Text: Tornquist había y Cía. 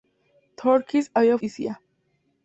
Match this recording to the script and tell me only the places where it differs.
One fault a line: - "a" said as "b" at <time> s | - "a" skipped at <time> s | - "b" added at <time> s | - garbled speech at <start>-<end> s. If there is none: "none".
none